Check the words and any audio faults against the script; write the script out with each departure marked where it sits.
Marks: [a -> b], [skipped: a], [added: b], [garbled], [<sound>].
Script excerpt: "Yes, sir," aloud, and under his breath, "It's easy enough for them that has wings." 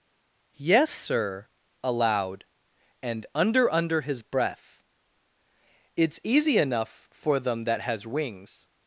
"Yes, sir," aloud, and under [added: under] his breath, "It's easy enough for them that has wings."